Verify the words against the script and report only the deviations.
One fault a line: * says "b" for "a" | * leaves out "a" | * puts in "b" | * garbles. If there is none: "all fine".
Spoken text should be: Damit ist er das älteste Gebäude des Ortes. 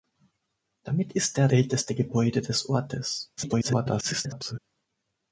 * leaves out "das"
* garbles